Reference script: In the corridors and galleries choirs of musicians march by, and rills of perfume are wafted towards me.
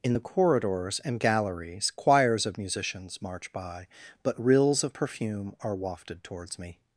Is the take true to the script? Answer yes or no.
no